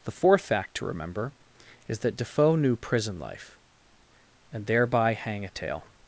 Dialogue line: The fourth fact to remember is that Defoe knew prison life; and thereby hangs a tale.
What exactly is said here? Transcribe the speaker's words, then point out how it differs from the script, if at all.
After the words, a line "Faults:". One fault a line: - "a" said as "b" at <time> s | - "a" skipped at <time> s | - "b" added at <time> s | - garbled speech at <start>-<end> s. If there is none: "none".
The fourth fact to remember is that Defoe knew prison life; and thereby hang a tale.
Faults:
- "hangs" said as "hang" at 5.1 s